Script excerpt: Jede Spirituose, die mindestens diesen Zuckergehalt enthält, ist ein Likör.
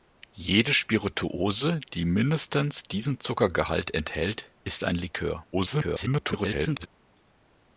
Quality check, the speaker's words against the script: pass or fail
fail